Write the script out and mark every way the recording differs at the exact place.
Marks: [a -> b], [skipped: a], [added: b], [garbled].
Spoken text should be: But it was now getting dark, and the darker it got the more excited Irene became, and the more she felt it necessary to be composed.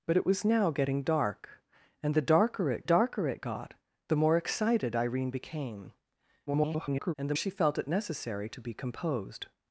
But it was now getting dark, and the darker it [added: darker it] got the more excited Irene became, [garbled] and the [skipped: more] she felt it necessary to be composed.